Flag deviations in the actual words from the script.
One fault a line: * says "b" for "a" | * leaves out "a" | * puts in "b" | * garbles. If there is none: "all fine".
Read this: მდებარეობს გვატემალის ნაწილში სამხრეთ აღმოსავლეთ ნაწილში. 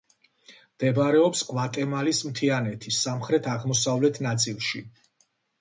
* says "მთიანეთის" for "ნაწილში"